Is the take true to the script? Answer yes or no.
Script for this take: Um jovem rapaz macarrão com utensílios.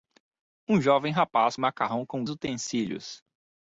yes